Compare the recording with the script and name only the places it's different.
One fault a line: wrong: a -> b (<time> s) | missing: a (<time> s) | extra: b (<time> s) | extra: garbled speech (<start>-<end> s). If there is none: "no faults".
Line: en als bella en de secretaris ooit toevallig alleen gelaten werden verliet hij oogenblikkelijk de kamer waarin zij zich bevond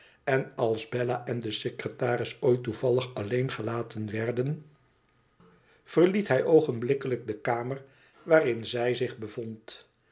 no faults